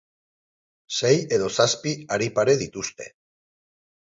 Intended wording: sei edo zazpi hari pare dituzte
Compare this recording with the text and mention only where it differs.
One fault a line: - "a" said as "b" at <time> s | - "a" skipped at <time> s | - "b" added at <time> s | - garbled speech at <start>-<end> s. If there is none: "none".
none